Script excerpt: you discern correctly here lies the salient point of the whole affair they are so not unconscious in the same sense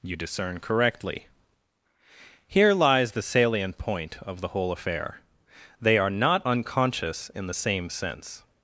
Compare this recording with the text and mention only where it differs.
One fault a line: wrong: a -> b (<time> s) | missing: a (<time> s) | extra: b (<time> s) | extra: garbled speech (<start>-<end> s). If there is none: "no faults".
missing: so (6.1 s)